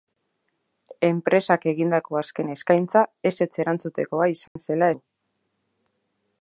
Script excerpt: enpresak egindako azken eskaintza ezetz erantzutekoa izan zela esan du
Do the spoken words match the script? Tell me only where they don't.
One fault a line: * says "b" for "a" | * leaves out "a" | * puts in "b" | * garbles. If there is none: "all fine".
* leaves out "esan"